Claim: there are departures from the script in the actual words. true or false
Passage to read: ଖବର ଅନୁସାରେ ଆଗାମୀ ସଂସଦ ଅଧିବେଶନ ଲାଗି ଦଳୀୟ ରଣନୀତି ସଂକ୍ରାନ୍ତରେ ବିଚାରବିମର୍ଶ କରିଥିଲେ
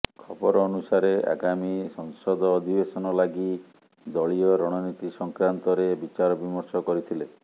false